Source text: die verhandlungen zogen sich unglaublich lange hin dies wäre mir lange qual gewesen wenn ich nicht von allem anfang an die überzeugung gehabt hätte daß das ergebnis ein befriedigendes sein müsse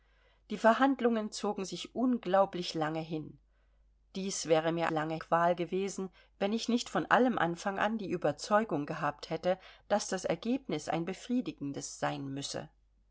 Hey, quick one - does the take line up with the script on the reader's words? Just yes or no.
yes